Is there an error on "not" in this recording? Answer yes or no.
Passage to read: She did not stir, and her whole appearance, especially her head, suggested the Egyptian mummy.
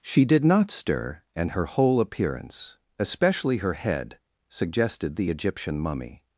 no